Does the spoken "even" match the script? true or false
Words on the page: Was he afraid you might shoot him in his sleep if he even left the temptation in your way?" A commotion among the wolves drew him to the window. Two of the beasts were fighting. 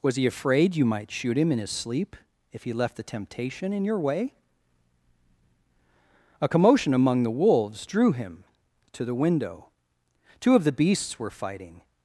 false